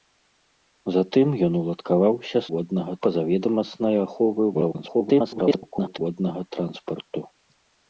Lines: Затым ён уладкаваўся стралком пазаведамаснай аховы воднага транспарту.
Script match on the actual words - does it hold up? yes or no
no